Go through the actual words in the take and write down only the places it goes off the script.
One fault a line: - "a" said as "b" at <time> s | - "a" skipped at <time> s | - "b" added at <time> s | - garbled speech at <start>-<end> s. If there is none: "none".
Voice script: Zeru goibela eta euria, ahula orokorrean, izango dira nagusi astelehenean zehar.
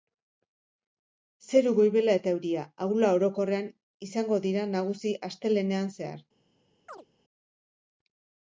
none